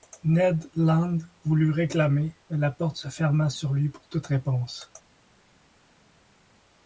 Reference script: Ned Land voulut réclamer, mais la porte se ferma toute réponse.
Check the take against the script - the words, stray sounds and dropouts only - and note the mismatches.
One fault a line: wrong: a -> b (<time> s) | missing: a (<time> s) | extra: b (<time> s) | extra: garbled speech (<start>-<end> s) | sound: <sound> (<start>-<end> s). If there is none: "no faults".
extra: sur lui pour (3.5 s)